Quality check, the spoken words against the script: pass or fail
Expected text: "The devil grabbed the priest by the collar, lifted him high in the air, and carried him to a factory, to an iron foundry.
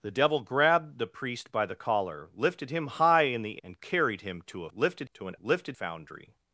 fail